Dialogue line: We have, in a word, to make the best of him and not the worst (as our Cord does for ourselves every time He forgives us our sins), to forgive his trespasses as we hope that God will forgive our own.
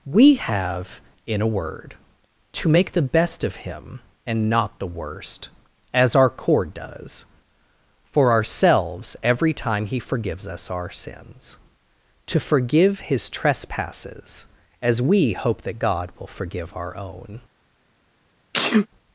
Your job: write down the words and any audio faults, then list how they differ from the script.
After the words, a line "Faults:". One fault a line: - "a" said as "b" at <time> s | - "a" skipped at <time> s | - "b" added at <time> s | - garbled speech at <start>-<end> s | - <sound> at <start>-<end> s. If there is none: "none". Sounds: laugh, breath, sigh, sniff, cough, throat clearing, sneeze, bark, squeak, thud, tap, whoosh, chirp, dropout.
We have, in a word, to make the best of him and not the worst (as our Cord does for ourselves every time He forgives us our sins), to forgive his trespasses as we hope that God will forgive our own.
Faults:
- sneeze at 18.5-18.9 s